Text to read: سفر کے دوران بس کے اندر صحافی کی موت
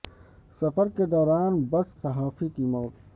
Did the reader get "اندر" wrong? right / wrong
wrong